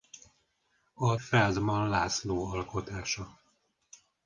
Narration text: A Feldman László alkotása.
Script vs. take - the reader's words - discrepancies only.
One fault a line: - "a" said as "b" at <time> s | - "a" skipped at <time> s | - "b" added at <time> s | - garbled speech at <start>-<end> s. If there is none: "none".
none